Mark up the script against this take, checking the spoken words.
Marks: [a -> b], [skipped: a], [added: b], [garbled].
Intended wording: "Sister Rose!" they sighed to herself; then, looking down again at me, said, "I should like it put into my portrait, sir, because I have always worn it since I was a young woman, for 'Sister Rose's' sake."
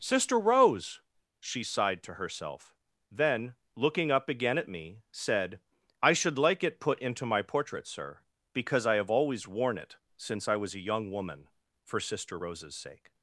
"Sister Rose!" [they -> she] sighed to herself; then, looking [down -> up] again at me, said, "I should like it put into my portrait, sir, because I have always worn it since I was a young woman, for 'Sister Rose's' sake."